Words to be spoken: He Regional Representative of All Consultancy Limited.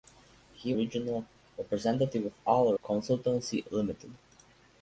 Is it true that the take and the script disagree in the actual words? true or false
false